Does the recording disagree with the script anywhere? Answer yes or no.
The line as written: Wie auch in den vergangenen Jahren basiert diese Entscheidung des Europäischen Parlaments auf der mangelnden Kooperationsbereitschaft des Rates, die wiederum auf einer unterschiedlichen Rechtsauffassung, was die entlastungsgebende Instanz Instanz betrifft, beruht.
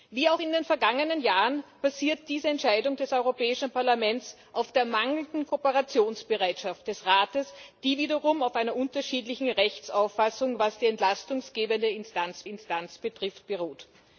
no